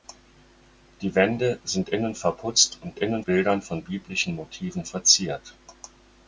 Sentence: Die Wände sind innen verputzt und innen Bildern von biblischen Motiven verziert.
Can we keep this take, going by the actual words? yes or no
yes